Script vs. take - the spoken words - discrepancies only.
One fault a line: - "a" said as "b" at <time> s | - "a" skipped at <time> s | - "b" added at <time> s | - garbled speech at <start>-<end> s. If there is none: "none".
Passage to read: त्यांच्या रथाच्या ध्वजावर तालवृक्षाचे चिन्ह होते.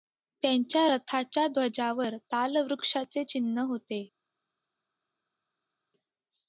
none